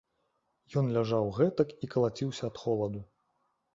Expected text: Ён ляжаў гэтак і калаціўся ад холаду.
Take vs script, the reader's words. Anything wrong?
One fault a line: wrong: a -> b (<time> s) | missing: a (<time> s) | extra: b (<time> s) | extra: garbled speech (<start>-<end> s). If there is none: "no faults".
no faults